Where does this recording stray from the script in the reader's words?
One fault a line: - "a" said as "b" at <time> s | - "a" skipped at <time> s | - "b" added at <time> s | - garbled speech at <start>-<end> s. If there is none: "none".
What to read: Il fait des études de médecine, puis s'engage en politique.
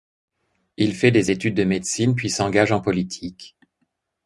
none